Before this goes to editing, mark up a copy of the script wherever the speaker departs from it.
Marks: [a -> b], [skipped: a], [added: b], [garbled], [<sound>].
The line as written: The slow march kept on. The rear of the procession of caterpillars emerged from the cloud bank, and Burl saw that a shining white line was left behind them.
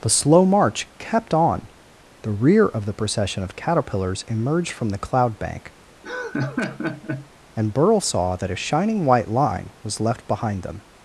The slow march kept on. The rear of the procession of caterpillars emerged from the cloud bank, [laugh] and Burl saw that a shining white line was left behind them.